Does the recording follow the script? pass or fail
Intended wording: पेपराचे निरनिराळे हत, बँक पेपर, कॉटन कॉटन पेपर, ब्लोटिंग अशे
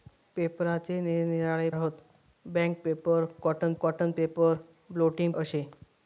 pass